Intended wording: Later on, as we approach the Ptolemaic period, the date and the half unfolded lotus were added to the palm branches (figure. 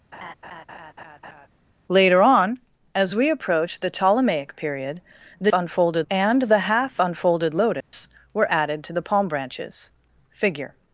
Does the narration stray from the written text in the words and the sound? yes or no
yes